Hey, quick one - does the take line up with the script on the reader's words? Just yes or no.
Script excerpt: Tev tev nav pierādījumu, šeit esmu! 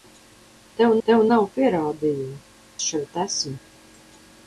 yes